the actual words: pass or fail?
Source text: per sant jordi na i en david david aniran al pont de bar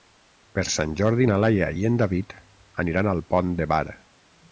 fail